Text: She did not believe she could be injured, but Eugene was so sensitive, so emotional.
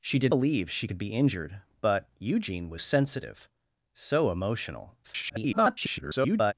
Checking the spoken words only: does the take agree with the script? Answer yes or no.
no